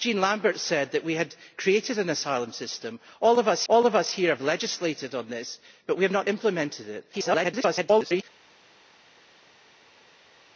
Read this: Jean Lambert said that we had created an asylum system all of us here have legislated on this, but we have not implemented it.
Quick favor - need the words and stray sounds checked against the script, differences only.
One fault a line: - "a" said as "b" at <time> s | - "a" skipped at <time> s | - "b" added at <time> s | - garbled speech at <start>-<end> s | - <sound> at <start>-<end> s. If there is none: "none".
- "all of us" added at 3.7 s
- garbled speech at 7.1-8.2 s